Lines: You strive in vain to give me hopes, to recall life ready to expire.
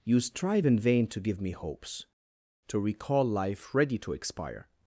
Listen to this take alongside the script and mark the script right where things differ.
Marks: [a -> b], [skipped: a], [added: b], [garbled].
You strive in vain to give me hopes, to recall life ready to expire.